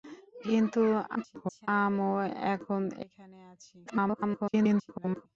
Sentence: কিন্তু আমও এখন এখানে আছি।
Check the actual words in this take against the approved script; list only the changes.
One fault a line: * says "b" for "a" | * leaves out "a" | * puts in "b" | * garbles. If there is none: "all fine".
* garbles
* garbles